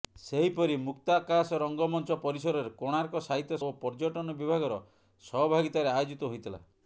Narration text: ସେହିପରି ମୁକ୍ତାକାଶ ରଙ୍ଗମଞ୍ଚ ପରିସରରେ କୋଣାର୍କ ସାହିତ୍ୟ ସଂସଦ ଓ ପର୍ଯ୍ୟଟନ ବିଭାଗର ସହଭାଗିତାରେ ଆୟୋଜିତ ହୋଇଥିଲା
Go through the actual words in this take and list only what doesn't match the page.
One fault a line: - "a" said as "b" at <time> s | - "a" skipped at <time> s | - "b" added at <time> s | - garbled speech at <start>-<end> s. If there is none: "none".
- "ସଂସଦ" skipped at 3.6 s